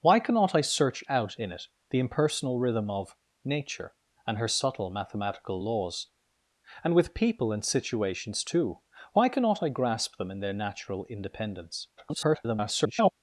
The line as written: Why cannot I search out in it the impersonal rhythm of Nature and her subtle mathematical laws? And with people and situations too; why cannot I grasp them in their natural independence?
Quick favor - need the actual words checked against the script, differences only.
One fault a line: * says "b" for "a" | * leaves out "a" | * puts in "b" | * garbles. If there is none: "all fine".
* garbles